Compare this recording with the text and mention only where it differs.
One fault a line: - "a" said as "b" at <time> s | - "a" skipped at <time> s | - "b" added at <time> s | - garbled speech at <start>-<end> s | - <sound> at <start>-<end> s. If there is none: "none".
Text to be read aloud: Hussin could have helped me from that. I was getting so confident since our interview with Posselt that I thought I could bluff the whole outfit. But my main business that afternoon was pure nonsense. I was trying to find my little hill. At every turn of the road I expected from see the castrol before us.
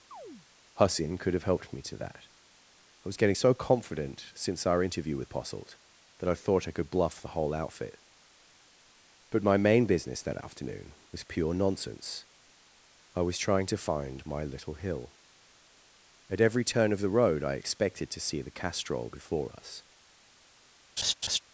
- chirp at 0.1-0.5 s
- "from" said as "to" at 1.8 s
- "from" said as "to" at 18.1 s
- laugh at 21.0-21.4 s